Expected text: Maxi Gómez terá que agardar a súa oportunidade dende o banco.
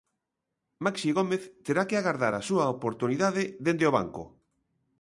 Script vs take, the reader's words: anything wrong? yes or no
no